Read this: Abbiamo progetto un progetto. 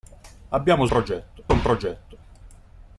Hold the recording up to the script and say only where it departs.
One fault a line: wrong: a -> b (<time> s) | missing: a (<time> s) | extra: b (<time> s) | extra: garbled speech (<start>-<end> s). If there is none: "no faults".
no faults